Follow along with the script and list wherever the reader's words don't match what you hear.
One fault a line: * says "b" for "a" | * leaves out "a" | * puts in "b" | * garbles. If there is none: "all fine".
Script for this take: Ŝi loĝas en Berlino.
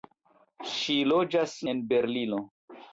all fine